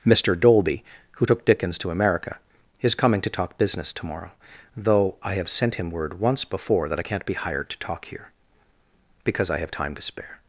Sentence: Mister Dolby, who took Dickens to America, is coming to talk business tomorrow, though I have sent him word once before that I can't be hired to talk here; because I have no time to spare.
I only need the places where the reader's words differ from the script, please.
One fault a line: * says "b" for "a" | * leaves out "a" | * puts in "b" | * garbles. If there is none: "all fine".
* leaves out "no"